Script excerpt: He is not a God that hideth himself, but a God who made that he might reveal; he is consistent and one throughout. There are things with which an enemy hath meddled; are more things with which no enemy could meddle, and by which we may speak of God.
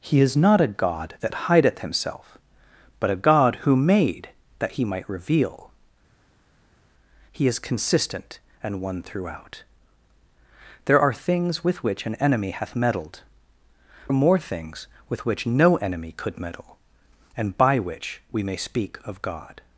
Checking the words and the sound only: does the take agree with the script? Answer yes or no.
yes